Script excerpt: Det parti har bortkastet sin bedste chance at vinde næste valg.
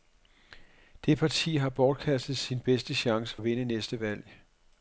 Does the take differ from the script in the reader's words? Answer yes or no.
no